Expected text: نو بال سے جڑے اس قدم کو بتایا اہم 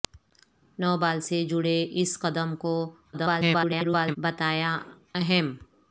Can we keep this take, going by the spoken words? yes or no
no